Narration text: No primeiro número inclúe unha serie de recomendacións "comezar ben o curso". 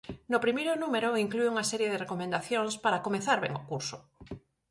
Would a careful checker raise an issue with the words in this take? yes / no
yes